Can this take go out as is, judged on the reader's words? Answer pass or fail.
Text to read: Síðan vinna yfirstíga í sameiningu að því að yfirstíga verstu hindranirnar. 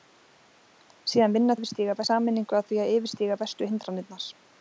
pass